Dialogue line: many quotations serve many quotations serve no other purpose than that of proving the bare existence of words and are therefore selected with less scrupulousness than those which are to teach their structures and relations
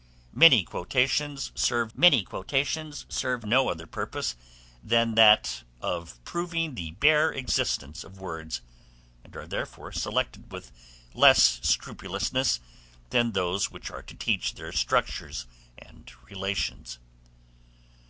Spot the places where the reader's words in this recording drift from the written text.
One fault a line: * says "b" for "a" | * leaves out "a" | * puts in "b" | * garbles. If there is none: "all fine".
all fine